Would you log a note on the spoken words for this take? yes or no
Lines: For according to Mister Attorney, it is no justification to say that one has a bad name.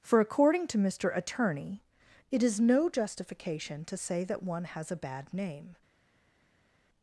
no